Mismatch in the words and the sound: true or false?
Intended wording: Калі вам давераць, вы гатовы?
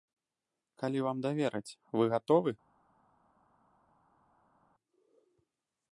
false